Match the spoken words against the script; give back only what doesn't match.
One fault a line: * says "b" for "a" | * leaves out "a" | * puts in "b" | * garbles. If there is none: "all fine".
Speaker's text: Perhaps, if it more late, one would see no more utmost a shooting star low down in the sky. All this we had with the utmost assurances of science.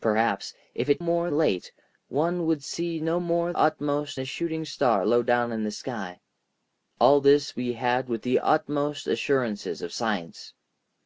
all fine